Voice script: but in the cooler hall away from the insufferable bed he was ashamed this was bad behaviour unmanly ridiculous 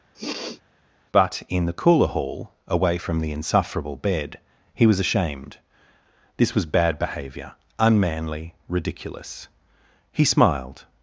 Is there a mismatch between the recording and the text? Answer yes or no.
yes